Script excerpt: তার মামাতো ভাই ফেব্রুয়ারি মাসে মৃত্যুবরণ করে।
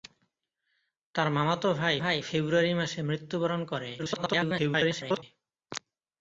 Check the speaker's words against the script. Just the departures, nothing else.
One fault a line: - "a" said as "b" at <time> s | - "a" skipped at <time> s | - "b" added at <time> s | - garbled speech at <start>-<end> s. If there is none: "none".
- "ভাই" added at 2.0 s
- garbled speech at 4.0-5.2 s